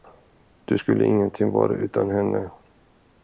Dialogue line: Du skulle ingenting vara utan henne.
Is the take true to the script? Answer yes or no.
yes